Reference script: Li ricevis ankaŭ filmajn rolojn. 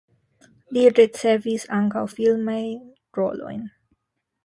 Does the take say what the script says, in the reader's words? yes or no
yes